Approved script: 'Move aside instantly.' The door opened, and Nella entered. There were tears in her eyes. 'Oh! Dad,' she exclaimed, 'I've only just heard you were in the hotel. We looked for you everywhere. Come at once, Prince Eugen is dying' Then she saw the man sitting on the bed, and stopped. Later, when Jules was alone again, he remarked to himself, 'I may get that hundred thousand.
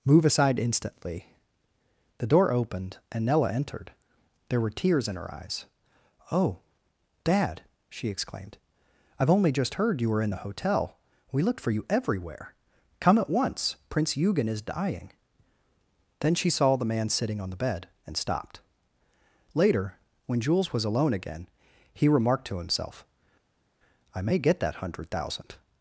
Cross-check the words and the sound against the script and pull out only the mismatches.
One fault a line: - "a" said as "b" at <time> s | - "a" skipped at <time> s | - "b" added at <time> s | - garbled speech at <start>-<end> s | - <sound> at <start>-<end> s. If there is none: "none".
none